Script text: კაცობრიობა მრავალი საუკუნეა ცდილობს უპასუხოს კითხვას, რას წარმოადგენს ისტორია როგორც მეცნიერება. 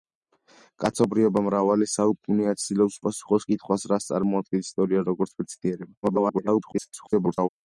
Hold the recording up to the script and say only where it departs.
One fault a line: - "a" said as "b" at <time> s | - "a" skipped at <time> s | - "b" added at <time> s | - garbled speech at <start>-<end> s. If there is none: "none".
- garbled speech at 6.0-7.5 s